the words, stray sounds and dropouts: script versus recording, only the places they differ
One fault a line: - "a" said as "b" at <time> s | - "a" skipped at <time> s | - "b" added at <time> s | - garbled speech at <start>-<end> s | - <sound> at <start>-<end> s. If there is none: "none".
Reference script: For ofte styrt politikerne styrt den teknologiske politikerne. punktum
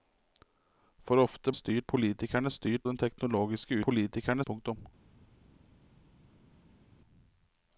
none